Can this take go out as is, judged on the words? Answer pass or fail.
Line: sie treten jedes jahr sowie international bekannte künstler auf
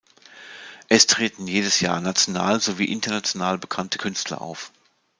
fail